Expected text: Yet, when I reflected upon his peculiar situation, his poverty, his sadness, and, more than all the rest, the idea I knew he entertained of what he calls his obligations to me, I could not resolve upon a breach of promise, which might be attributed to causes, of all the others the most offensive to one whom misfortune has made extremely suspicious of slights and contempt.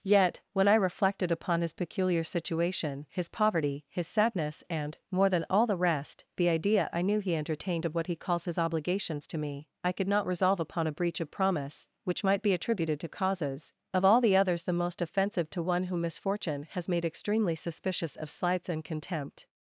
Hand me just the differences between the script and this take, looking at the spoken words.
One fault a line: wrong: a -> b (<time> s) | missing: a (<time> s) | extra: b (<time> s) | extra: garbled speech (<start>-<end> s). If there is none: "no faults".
no faults